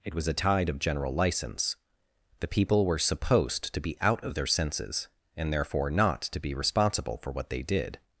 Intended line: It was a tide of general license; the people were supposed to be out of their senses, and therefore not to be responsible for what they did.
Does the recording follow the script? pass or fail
pass